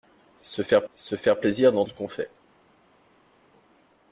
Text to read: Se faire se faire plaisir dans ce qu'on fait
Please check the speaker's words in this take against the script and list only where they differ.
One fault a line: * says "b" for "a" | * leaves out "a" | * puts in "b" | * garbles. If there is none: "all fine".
all fine